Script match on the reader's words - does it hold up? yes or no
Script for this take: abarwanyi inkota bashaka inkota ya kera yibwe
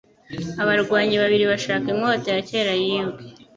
no